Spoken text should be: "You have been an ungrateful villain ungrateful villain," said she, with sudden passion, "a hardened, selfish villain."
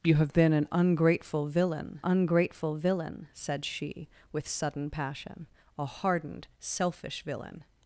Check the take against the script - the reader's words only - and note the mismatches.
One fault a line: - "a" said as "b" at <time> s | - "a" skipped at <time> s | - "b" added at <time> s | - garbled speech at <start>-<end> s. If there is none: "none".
none